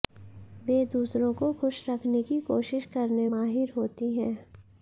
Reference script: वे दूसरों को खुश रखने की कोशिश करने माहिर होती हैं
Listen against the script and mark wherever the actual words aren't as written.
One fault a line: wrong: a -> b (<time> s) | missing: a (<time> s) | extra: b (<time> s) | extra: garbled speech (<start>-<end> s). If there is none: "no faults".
no faults